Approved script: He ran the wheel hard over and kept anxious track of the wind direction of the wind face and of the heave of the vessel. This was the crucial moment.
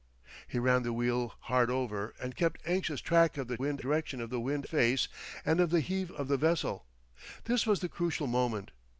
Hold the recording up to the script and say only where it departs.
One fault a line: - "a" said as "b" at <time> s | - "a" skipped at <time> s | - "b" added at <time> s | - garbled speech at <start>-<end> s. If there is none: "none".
none